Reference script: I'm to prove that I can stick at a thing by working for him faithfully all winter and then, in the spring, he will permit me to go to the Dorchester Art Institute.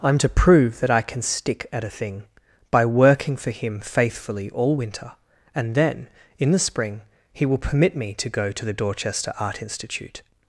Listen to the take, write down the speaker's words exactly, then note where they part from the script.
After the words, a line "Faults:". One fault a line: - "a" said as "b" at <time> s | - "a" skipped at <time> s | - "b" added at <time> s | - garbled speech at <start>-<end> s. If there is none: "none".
I'm to prove that I can stick at a thing by working for him faithfully all winter and then, in the spring, he will permit me to go to the Dorchester Art Institute.
Faults:
none